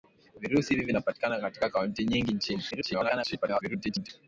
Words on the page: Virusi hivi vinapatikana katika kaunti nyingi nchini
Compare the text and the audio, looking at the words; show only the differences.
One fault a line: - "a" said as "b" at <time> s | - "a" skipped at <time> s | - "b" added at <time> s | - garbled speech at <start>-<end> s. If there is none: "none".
- garbled speech at 2.7-4.1 s